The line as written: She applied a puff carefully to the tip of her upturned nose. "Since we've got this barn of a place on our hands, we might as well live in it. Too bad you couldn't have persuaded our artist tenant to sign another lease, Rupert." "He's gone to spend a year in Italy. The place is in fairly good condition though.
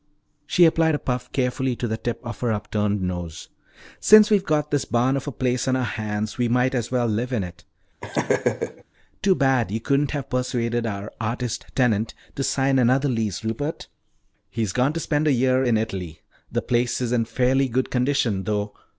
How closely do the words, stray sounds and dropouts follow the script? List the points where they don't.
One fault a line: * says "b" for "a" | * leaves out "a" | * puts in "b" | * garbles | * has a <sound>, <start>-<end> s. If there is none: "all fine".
* has a laugh, 8.0-8.8 s